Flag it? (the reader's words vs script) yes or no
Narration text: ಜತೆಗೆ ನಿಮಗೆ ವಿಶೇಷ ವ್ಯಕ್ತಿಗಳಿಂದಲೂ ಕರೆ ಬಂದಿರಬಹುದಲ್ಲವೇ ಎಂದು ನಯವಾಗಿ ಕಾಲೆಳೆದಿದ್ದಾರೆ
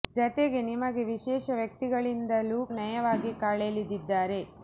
yes